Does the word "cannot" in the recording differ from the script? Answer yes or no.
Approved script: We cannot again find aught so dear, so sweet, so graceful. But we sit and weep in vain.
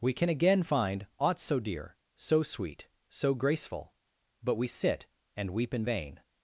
yes